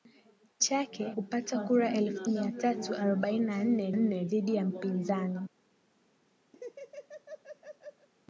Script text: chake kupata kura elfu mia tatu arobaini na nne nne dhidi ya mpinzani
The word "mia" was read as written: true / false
true